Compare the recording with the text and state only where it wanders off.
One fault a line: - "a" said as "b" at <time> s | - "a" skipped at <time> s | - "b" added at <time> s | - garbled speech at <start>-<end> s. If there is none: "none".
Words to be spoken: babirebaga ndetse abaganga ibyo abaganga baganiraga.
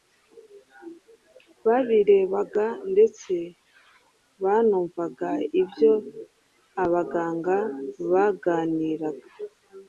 - "abaganga" said as "banumvaga" at 4.4 s